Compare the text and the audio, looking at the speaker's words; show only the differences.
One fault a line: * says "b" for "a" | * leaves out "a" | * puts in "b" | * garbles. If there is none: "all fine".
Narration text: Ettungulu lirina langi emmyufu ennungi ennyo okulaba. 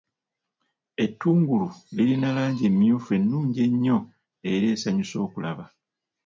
* puts in "era esanyusa"